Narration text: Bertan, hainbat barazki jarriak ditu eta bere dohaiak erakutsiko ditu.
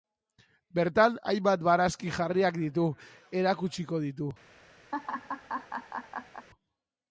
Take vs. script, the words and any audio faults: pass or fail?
fail